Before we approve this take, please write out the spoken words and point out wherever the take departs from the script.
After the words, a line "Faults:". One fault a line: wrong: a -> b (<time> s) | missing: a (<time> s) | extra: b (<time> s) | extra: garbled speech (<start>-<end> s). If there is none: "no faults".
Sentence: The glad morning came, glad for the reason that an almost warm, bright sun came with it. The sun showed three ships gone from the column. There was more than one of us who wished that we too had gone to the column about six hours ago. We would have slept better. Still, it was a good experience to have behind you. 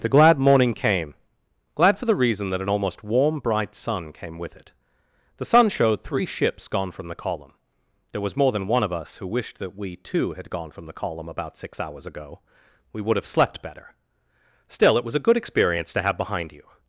The glad morning came, glad for the reason that an almost warm, bright sun came with it. The sun showed three ships gone from the column. There was more than one of us who wished that we too had gone from the column about six hours ago. We would have slept better. Still, it was a good experience to have behind you.
Faults:
wrong: to -> from (10.7 s)